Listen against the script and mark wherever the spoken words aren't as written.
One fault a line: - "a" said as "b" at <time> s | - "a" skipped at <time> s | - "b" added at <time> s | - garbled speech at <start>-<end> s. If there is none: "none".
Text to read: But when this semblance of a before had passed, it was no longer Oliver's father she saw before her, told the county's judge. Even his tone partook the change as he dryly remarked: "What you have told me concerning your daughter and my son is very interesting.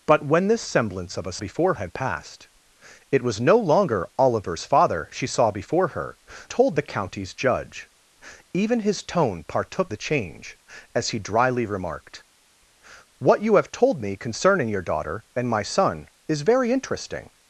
none